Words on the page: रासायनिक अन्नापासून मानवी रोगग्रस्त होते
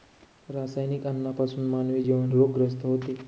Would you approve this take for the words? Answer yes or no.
no